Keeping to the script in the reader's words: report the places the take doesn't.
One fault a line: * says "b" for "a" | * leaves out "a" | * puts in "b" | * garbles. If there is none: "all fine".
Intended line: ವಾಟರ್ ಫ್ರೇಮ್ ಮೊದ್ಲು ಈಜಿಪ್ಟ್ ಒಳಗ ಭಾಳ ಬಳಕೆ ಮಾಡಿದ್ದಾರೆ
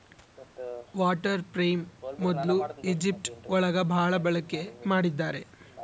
all fine